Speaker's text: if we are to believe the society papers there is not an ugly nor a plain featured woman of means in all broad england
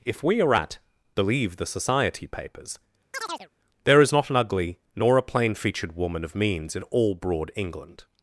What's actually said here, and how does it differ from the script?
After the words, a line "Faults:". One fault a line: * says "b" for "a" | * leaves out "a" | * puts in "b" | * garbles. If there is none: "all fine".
if we are at believe the society papers there is not an ugly nor a plain featured woman of means in all broad england
Faults:
* says "at" for "to"